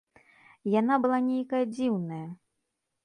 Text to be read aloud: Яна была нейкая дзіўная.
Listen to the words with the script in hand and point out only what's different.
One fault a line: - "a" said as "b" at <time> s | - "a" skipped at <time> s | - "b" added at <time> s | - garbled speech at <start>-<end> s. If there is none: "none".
none